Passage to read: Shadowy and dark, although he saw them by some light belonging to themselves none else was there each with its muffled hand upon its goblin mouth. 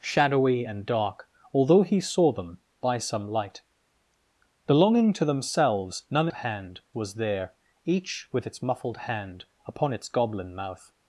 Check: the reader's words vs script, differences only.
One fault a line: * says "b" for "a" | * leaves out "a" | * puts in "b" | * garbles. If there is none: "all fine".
* says "hand" for "else"